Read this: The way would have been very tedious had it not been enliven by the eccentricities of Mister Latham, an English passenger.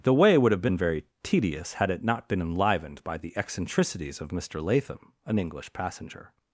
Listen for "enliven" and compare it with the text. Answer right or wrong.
wrong